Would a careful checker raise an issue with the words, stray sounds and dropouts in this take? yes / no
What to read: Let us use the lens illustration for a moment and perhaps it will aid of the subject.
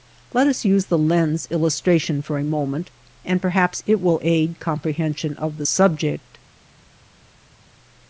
yes